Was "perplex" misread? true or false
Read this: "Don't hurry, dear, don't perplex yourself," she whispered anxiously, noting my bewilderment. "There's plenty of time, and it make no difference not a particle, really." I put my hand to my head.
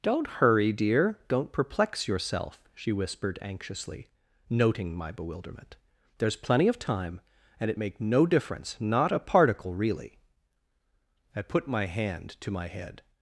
false